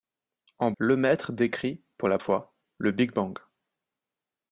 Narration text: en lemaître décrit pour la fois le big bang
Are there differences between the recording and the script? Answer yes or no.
no